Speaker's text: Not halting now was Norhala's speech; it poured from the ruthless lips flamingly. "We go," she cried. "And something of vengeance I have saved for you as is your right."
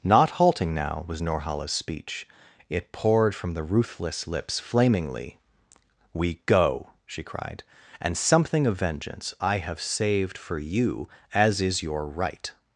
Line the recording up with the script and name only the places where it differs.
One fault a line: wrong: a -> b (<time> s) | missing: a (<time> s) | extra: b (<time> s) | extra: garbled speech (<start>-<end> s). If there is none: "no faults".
no faults